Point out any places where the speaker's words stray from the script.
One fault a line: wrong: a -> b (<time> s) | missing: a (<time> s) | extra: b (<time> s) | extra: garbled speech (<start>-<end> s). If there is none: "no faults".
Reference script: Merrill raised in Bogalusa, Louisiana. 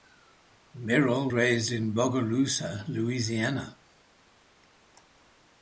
no faults